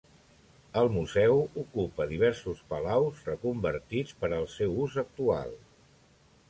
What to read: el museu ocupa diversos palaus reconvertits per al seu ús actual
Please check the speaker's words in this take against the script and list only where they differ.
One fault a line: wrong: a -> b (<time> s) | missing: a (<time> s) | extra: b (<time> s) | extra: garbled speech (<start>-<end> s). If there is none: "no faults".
no faults